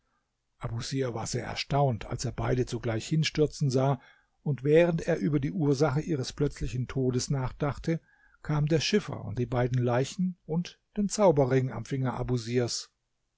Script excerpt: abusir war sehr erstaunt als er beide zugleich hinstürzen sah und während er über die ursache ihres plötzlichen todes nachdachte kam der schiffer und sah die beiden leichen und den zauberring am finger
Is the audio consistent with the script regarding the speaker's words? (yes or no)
no